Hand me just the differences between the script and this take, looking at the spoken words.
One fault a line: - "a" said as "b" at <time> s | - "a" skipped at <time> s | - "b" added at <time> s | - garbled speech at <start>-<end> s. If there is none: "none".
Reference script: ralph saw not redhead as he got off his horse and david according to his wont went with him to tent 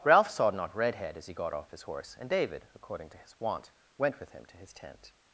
- "his" added at 4.6 s